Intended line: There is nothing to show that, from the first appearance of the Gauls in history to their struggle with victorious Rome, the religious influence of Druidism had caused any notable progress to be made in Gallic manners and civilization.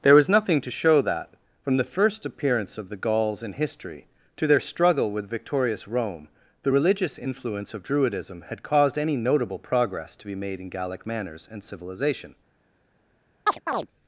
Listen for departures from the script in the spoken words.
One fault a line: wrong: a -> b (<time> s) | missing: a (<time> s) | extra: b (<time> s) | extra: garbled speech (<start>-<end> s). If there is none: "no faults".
wrong: is -> was (0.1 s)